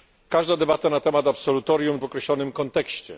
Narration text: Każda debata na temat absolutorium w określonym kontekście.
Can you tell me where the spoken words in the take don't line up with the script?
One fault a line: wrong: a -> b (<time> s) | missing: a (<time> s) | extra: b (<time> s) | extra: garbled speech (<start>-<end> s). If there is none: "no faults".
no faults